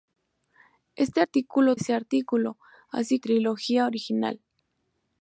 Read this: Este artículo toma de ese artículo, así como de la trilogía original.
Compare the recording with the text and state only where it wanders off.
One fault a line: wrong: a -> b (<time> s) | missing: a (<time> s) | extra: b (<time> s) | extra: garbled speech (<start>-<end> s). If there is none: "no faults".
missing: toma de (1.7 s)
missing: como de la (3.2 s)